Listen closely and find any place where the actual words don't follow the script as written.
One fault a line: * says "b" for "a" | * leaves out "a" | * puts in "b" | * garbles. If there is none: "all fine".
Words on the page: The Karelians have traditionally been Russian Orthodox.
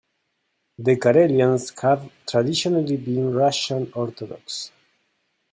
all fine